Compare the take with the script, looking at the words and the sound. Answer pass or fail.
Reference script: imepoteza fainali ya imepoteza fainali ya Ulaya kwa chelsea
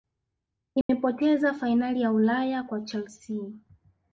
fail